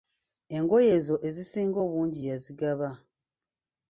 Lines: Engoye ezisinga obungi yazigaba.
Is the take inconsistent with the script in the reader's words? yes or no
yes